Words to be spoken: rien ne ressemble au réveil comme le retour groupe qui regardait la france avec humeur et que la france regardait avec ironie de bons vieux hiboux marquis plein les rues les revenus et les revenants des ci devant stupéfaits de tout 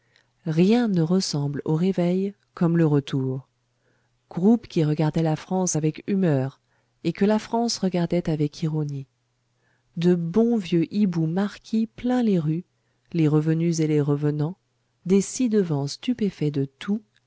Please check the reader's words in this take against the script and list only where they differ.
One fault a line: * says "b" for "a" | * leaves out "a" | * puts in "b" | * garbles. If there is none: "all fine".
all fine